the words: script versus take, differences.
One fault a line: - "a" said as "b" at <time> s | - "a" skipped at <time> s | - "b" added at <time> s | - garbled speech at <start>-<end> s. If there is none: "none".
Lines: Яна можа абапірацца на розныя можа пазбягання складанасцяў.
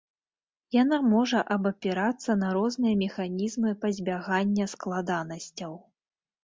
- "можа" said as "механізмы" at 3.0 s